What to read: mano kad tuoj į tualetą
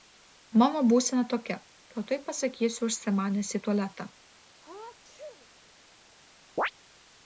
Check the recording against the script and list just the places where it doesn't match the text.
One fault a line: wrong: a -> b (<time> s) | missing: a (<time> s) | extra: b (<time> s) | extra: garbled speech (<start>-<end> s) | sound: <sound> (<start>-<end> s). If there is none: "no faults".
extra: būsena tokia (0.9 s)
extra: pasakysiu užsimanęs (2.3 s)
sound: sneeze (4.6-5.5 s)
sound: chirp (6.6-6.7 s)